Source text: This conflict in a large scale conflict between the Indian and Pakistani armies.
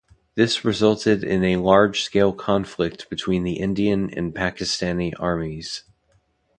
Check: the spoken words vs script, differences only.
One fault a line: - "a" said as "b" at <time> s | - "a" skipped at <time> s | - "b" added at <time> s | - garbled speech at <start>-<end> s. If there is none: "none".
- "conflict" said as "resulted" at 0.7 s